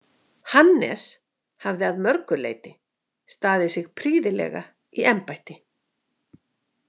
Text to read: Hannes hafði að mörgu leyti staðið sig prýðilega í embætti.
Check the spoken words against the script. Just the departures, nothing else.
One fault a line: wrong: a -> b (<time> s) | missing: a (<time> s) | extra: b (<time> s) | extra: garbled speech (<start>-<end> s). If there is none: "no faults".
no faults